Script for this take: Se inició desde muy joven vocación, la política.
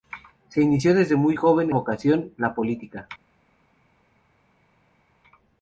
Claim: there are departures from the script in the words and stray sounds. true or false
false